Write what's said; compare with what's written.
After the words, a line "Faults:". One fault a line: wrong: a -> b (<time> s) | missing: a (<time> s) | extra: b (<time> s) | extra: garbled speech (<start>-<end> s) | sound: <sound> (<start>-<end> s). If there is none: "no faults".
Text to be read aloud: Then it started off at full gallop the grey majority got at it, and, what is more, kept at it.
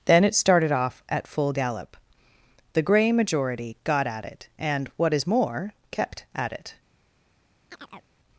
Then it started off at full gallop the grey majority got at it, and, what is more, kept at it.
Faults:
sound: chirp (7.7-8.1 s)